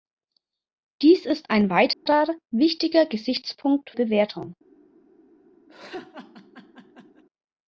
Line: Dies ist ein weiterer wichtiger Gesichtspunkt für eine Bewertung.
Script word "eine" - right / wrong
wrong